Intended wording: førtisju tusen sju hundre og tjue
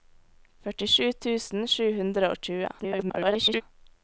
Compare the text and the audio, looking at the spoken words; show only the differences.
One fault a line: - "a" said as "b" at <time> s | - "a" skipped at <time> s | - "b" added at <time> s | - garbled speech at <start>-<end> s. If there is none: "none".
- garbled speech at 2.8-3.6 s